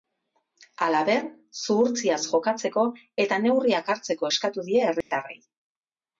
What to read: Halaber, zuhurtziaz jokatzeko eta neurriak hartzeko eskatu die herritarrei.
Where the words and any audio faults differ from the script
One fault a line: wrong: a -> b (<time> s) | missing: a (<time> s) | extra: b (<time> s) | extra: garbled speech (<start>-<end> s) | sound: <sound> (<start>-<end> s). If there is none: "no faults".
sound: dropout (5.0-5.1 s)